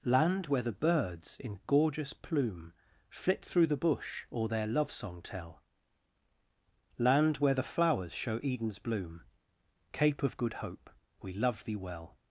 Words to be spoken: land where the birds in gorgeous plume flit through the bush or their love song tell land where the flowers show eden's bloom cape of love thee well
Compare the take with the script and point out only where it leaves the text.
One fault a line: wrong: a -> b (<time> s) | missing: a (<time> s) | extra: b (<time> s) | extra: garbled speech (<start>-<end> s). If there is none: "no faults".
extra: good hope we (10.4 s)